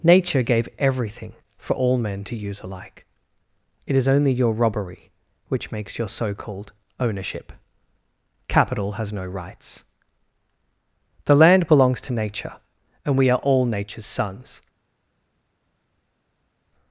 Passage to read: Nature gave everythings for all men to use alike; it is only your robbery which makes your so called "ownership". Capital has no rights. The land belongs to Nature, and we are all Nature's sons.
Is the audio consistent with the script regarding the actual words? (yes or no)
no